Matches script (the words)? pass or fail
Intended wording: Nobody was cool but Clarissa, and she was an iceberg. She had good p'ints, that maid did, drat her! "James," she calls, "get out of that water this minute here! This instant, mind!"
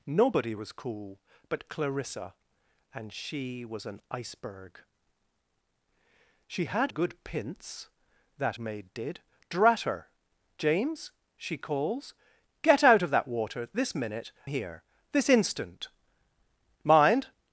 pass